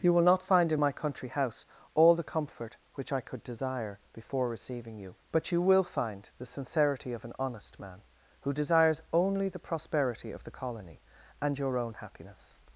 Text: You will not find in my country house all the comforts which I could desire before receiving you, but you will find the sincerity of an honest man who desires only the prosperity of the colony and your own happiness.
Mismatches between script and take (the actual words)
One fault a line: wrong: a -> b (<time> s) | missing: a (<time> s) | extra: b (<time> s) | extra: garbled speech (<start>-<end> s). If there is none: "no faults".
wrong: comforts -> comfort (2.2 s)